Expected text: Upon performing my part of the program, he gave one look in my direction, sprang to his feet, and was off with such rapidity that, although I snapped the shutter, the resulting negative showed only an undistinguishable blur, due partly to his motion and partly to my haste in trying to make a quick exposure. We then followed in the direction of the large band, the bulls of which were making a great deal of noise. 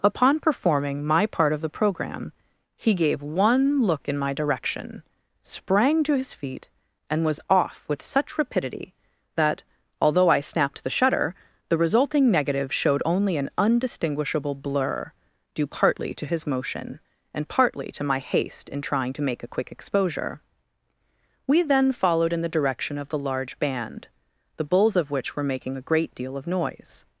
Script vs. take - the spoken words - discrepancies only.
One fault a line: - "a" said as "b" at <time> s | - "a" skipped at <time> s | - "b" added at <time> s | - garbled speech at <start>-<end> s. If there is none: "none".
none